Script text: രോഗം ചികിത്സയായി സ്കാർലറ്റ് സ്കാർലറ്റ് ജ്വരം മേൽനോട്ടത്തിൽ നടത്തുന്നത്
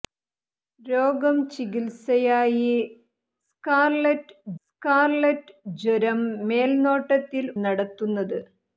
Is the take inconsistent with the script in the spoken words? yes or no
no